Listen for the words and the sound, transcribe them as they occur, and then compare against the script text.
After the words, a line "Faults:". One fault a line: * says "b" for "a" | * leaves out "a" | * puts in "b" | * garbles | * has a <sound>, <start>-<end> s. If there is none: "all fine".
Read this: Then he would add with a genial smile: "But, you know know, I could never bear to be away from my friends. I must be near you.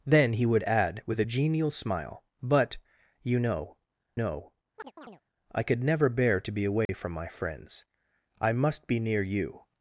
Then he would add with a genial smile: "But, you know know, I could never bear to be away from my friends. I must be near you.
Faults:
* has a chirp, 4.8-5.2 s
* has a dropout, 6.9-6.9 s